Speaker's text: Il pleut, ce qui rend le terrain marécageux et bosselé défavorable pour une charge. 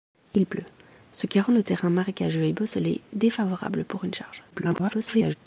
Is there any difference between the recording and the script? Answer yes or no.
yes